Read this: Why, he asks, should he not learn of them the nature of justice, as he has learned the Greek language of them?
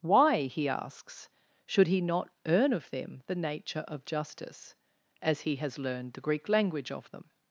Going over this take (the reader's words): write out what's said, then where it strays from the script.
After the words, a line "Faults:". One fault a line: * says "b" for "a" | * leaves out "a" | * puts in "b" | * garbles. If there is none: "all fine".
Why, he asks, should he not earn of them the nature of justice, as he has learned the Greek language of them?
Faults:
* says "earn" for "learn"